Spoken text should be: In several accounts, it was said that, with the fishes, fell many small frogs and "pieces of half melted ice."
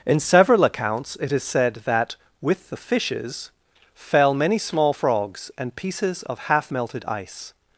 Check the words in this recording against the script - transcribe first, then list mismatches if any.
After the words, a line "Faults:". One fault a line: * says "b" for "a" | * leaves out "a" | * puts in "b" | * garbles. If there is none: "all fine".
In several accounts, it is said that, with the fishes, fell many small frogs and "pieces of half melted ice."
Faults:
* says "is" for "was"